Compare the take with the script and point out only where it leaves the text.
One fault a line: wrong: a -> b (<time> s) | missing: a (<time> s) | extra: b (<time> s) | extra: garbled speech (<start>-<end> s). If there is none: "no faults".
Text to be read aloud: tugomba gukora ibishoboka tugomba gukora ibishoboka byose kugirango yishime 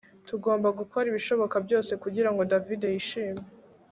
missing: tugomba gukora ibishoboka (1.6 s)
extra: david (2.5 s)